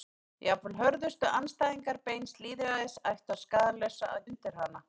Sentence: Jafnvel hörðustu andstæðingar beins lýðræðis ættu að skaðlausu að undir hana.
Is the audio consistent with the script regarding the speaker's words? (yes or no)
yes